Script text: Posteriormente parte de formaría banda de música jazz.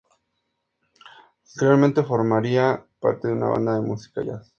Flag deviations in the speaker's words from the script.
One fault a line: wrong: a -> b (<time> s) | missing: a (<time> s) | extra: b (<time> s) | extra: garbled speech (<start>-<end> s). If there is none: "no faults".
extra: formaría (2.0 s)
wrong: formaría -> una (3.3 s)